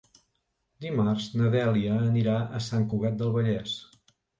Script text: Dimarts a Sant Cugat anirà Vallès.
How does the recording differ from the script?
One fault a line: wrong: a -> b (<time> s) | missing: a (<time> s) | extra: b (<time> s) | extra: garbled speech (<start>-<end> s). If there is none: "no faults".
extra: na Dèlia anirà (1.4 s)
wrong: anirà -> del (3.2 s)